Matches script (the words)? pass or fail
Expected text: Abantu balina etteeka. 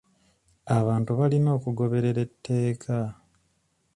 fail